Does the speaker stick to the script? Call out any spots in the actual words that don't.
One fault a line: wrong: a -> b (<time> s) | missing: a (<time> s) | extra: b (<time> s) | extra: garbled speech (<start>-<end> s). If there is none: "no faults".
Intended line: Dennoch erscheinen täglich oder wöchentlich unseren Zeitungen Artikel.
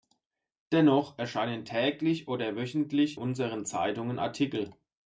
no faults